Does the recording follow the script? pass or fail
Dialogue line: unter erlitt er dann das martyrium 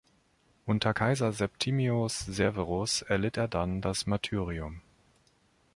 fail